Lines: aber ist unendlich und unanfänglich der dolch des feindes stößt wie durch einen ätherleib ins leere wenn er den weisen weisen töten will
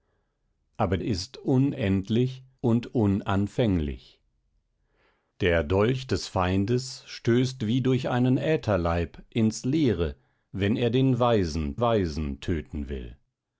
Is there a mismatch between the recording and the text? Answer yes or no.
no